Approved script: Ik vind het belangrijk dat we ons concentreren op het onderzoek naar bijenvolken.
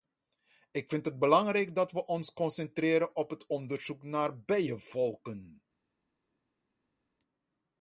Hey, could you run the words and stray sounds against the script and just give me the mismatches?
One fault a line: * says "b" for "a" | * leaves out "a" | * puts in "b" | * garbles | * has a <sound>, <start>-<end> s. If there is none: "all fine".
all fine